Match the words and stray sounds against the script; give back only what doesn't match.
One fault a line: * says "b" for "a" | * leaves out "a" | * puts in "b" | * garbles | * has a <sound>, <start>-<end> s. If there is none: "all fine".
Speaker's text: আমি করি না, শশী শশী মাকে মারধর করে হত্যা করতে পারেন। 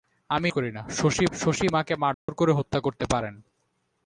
* has a dropout, 2.1-2.3 s